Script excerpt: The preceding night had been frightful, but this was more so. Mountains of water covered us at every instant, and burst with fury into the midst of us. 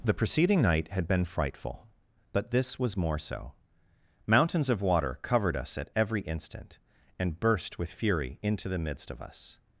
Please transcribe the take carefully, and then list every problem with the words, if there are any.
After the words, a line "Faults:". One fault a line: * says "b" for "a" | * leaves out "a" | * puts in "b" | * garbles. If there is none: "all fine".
The preceding night had been frightful, but this was more so. Mountains of water covered us at every instant, and burst with fury into the midst of us.
Faults:
all fine